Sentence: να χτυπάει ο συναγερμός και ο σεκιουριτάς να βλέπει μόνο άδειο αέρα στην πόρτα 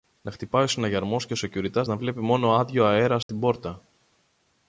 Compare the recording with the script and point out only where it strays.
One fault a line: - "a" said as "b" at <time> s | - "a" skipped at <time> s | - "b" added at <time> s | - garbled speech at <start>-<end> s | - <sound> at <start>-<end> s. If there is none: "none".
- dropout at 3.2-3.3 s